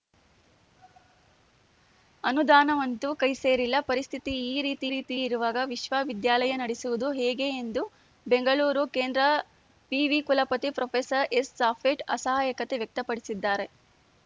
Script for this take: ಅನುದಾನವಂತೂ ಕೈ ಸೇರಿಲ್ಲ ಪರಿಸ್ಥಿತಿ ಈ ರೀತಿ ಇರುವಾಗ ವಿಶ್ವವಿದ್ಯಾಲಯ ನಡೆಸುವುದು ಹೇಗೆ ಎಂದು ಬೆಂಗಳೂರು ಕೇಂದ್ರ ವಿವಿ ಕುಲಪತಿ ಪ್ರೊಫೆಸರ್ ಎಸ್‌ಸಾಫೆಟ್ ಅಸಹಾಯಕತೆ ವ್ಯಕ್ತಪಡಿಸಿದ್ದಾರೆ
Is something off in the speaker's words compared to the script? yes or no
yes